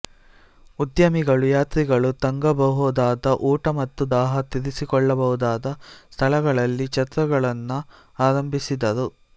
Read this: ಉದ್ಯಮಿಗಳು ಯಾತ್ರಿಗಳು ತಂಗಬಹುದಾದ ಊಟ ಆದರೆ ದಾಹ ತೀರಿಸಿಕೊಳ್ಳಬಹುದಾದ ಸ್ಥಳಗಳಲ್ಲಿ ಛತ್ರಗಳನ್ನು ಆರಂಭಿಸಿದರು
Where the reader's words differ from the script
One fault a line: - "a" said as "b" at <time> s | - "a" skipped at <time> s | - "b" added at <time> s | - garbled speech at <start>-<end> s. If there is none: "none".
- "ಆದರೆ" said as "ಮತ್ತು" at 3.8 s